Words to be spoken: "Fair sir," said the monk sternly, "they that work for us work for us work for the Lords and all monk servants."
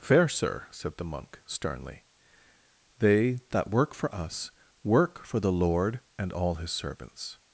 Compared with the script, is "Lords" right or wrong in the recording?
wrong